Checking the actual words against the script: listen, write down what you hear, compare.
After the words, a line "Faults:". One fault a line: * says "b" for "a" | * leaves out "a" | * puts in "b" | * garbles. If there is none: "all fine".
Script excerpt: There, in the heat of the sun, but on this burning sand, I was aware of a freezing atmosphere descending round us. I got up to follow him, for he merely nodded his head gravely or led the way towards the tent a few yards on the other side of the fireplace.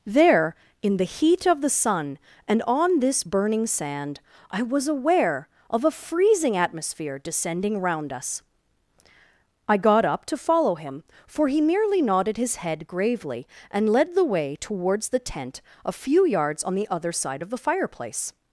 There, in the heat of the sun, and on this burning sand, I was aware of a freezing atmosphere descending round us. I got up to follow him, for he merely nodded his head gravely and led the way towards the tent a few yards on the other side of the fireplace.
Faults:
* says "and" for "but"
* says "and" for "or"